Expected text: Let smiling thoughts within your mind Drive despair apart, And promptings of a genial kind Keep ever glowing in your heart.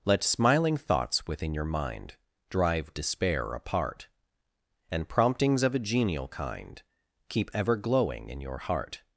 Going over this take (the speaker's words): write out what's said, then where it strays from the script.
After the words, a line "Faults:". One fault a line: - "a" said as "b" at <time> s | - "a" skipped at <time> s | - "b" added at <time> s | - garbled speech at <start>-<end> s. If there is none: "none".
Let smiling thoughts within your mind Drive despair apart, And promptings of a genial kind Keep ever glowing in your heart.
Faults:
none